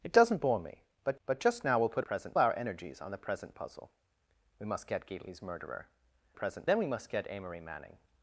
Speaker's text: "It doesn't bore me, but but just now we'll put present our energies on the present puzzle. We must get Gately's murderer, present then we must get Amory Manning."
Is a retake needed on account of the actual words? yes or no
no